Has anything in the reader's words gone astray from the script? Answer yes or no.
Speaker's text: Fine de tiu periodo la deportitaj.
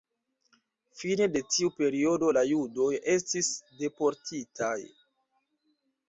yes